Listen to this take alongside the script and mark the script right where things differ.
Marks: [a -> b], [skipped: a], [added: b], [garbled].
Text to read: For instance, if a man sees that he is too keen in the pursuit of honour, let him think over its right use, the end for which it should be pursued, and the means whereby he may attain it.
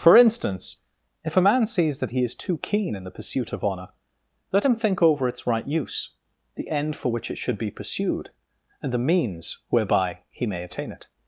For instance, if a man sees that he is too keen in the pursuit of honour, let him think over its right use, the end for which it should be pursued, and the means whereby he may attain it.